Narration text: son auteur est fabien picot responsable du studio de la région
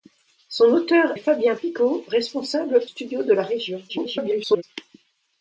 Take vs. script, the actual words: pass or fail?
fail